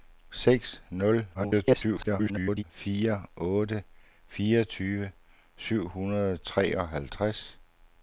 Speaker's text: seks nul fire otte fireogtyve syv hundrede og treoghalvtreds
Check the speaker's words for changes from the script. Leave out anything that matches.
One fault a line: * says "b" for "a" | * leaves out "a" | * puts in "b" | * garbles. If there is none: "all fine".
* garbles